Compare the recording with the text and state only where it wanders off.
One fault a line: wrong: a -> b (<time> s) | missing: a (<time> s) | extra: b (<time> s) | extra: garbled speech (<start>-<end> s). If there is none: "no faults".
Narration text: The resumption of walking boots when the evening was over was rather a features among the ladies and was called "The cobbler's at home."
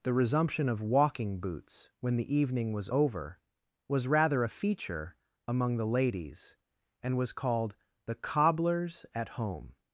wrong: features -> feature (4.5 s)